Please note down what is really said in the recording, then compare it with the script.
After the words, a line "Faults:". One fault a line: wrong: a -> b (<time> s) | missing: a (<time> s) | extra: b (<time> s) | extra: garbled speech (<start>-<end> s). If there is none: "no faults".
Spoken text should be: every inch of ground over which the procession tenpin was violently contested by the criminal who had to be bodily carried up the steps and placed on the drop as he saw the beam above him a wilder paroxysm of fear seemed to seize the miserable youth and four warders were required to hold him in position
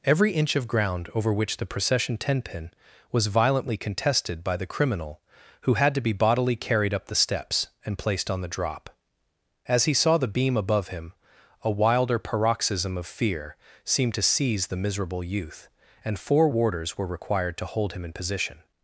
every inch of ground over which the procession tenpin was violently contested by the criminal who had to be bodily carried up the steps and placed on the drop as he saw the beam above him a wilder paroxysm of fear seemed to seize the miserable youth and four warders were required to hold him in position
Faults:
no faults